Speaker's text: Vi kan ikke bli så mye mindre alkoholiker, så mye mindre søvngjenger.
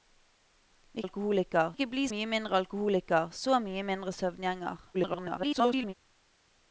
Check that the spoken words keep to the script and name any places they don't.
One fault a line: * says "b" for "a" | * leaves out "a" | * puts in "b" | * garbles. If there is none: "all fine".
* says "alkoholiker" for "kan"
* leaves out "så"
* garbles